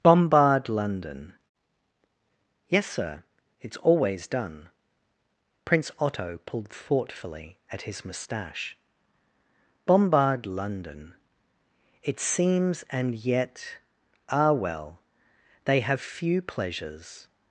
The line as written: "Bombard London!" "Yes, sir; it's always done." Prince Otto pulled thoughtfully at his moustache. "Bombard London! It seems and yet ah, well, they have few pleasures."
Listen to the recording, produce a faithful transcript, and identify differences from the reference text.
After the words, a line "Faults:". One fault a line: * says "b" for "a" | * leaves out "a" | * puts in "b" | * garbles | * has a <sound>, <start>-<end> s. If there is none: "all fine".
"Bombard London!" "Yes, sir; it's always done." Prince Otto pulled thoughtfully at his moustache. "Bombard London! It seems and yet ah, well, they have few pleasures."
Faults:
all fine